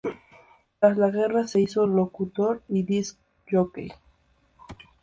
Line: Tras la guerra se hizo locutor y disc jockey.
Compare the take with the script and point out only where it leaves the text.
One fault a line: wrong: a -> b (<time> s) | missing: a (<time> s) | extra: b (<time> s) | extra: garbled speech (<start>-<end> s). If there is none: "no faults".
no faults